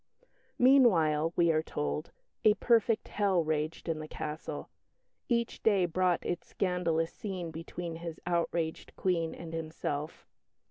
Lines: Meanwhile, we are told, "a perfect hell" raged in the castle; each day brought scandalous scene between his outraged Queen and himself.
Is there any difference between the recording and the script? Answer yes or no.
yes